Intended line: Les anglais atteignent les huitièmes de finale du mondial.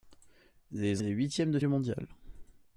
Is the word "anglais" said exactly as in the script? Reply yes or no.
no